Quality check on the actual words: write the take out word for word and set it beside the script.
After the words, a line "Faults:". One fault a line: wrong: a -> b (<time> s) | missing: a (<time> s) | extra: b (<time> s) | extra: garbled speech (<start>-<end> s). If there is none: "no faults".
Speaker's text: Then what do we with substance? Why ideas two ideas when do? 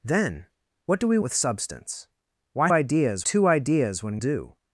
Then what do we with substance? Why ideas two ideas when do?
Faults:
no faults